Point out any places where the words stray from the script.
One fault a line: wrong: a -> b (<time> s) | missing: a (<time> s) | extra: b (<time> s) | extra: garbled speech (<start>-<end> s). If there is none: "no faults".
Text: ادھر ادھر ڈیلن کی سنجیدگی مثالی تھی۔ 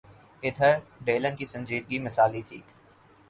missing: ادھر (0.7 s)